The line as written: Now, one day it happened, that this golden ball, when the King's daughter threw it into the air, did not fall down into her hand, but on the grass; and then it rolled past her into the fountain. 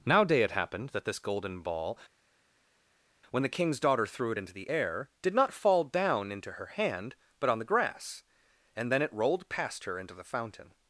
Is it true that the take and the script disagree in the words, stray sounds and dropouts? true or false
true